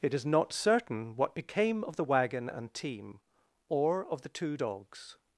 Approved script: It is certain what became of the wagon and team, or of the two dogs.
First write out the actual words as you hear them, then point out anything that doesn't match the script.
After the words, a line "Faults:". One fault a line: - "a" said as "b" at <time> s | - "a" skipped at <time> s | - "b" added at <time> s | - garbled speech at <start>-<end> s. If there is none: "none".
It is not certain what became of the wagon and team, or of the two dogs.
Faults:
- "not" added at 0.2 s